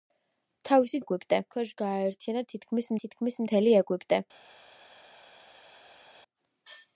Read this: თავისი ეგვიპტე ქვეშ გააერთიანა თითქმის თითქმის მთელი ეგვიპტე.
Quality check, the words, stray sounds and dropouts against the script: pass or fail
pass